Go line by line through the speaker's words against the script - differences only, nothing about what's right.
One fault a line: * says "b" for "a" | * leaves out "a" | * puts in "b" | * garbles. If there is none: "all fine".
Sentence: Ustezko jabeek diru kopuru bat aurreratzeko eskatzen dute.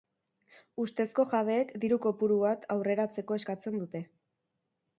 all fine